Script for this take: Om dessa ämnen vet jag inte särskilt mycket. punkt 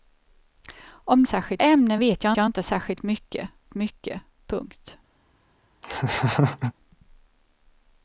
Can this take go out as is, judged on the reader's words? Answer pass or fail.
fail